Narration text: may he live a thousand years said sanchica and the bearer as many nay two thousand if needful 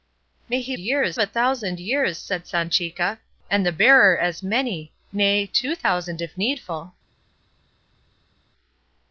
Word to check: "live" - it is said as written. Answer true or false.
false